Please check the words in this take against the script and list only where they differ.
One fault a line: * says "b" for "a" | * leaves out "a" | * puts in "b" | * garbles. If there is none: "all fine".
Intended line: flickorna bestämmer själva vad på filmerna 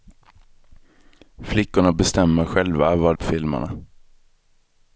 all fine